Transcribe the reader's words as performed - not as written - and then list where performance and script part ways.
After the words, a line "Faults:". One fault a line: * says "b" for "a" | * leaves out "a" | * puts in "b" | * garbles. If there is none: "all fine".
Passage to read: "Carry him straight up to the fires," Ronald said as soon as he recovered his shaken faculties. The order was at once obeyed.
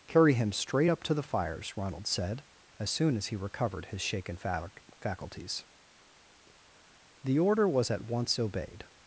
"Carry him straight up to the fires," Ronald said as soon as he recovered his shaken faculties. The order was at once obeyed.
Faults:
all fine